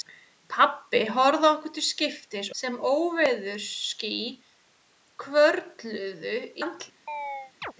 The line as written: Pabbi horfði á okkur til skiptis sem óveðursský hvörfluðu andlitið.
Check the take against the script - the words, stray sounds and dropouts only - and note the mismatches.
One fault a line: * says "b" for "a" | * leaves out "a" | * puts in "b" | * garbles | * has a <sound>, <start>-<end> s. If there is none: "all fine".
* has a chirp, 7.1-7.7 s